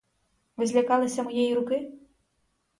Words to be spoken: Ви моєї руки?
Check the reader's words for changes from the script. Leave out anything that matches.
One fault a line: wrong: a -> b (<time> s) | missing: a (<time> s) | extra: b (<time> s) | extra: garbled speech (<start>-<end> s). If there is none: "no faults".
extra: злякалися (0.7 s)